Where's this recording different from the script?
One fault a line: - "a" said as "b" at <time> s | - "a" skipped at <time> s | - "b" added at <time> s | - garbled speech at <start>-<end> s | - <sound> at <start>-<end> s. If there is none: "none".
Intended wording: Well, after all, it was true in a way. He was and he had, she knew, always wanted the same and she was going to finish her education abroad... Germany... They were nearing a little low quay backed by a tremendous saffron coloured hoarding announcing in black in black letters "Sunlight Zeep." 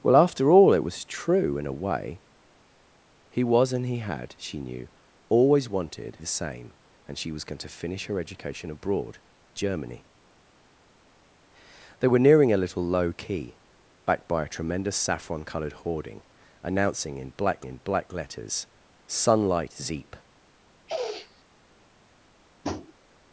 - sniff at 20.9-21.4 s
- tap at 22.6-22.9 s